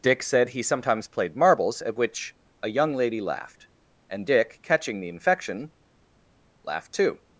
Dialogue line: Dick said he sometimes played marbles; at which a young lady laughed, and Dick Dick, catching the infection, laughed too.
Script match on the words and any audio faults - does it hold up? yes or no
no